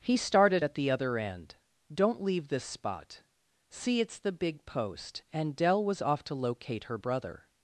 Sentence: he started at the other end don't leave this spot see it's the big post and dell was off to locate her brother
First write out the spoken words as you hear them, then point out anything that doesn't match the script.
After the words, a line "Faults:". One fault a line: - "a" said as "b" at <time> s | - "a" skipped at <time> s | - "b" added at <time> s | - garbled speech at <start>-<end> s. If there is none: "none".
he started at the other end don't leave this spot see it's the big post and dell was off to locate her brother
Faults:
none